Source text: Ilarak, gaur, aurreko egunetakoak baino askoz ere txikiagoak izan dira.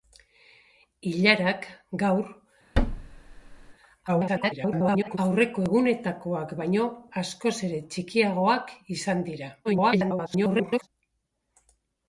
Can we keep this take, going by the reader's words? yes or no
no